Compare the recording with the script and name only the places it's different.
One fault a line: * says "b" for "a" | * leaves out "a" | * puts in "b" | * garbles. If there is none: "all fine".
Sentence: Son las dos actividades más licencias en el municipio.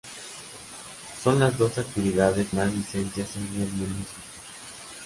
all fine